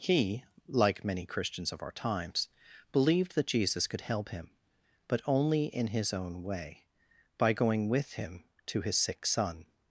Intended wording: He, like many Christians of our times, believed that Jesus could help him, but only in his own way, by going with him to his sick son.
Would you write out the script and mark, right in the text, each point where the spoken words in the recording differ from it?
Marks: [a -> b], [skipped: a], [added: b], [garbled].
He, like many Christians of our times, believed that Jesus could help him, but only in his own way, by going with him to his sick son.